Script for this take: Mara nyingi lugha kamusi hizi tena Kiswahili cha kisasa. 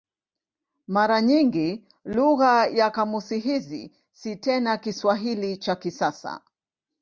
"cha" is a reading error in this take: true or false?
false